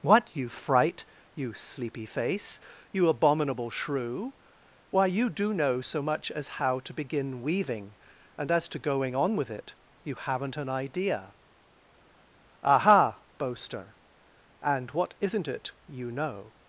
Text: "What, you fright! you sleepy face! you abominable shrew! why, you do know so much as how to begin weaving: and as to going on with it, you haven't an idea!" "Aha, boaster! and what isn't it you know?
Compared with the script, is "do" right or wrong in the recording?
right